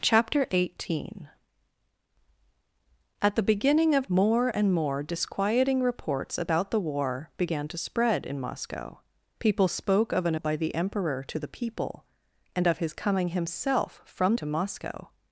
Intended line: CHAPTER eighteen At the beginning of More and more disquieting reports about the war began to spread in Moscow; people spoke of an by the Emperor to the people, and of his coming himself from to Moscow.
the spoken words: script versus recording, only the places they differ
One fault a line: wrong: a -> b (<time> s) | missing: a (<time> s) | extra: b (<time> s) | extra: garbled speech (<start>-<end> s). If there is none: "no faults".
no faults